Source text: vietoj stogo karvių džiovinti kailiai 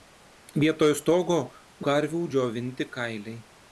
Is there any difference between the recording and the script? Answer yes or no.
no